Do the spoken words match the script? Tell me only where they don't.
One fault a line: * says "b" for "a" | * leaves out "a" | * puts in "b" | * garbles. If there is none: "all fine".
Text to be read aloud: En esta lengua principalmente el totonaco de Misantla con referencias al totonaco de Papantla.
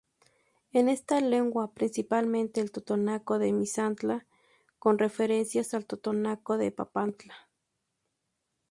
all fine